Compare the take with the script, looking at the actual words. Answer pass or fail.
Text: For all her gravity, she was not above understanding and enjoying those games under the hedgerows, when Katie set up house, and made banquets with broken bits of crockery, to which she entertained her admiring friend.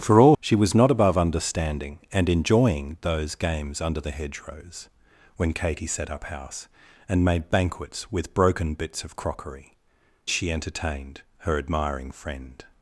fail